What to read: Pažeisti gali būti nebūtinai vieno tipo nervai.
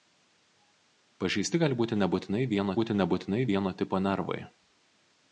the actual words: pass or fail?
fail